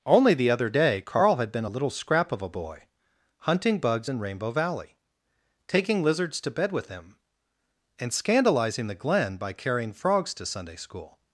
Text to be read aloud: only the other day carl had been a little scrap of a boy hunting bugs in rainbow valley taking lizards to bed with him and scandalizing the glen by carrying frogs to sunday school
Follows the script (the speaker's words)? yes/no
yes